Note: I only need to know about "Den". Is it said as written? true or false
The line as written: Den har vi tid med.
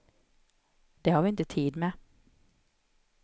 false